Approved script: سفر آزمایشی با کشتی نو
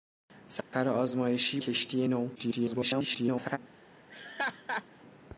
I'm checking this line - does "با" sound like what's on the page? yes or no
no